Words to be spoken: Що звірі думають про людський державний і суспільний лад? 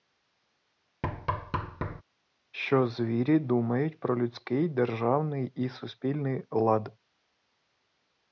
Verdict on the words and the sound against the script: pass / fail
fail